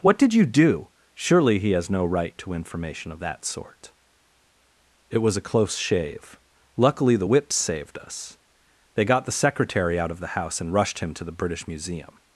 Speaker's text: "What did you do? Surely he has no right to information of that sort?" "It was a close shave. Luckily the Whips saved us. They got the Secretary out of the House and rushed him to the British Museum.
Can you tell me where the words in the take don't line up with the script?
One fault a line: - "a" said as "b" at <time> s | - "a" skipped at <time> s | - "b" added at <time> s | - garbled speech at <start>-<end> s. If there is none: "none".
none